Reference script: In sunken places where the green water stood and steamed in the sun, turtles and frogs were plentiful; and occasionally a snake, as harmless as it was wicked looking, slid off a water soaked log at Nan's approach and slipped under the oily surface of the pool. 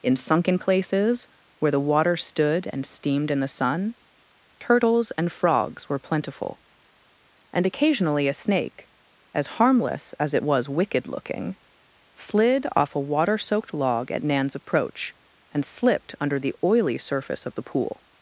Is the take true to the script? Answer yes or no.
no